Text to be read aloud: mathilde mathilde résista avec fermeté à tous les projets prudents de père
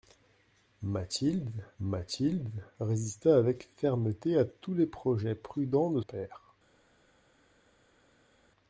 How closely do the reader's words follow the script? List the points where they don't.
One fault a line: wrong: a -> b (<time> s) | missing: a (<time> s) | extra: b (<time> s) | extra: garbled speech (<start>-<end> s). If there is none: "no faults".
no faults